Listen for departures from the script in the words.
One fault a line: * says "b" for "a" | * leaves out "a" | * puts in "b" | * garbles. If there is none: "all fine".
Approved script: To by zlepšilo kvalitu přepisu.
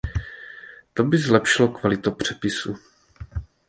all fine